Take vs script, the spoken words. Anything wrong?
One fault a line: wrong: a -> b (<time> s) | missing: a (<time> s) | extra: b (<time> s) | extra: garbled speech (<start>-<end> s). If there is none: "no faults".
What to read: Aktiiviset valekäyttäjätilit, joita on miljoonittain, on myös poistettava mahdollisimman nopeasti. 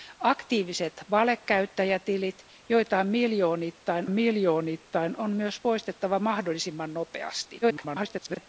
extra: miljoonittain (4.1 s)
extra: garbled speech (7.6-8.5 s)